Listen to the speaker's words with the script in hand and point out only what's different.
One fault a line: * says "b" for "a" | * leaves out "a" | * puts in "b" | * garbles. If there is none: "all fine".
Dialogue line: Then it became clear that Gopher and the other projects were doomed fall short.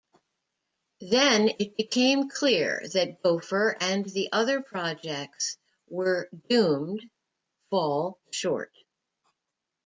all fine